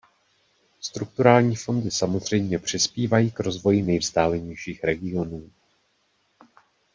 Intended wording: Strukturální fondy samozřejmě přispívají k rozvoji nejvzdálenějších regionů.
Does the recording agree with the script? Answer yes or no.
yes